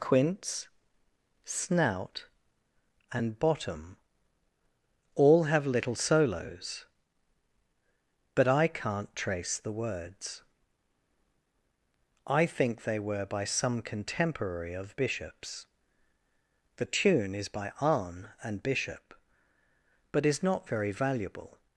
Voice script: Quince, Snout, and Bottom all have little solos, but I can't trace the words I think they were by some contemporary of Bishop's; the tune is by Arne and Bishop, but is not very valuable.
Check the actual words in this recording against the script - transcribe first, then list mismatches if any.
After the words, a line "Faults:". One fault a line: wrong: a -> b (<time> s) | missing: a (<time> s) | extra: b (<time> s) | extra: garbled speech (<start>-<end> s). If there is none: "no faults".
Quince, Snout, and Bottom all have little solos, but I can't trace the words I think they were by some contemporary of Bishop's; the tune is by Arne and Bishop, but is not very valuable.
Faults:
no faults